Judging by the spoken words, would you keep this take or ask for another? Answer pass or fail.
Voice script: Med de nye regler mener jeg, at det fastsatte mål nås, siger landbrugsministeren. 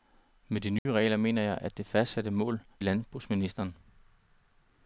fail